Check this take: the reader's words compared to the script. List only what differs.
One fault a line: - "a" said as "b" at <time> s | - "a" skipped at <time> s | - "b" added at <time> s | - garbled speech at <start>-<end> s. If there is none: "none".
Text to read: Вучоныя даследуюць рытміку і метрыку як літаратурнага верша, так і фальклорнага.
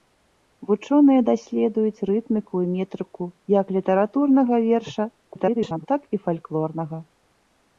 - garbled speech at 5.3-5.9 s